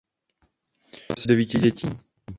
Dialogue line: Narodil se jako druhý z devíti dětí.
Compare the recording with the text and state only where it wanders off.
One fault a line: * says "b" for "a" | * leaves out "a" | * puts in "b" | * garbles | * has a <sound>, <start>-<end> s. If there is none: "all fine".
* leaves out "se jako druhý"